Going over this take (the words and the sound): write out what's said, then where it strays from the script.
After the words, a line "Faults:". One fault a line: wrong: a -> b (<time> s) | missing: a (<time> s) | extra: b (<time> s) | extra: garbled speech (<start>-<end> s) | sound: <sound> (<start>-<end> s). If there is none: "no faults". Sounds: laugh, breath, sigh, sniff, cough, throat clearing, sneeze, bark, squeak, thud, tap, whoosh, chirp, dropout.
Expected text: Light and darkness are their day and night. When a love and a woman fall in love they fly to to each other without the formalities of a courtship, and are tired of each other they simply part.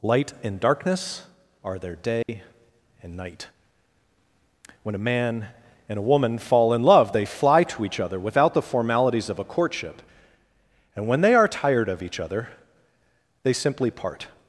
Light and darkness are their day and night. When a man and a woman fall in love they fly to each other without the formalities of a courtship, and when they are tired of each other they simply part.
Faults:
sound: dropout (2.2-2.3 s)
wrong: love -> man (5.0 s)
missing: to (7.8 s)
extra: when they (11.1 s)